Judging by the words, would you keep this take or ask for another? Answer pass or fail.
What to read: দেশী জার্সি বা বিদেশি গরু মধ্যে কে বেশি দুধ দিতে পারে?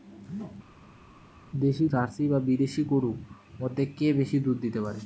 pass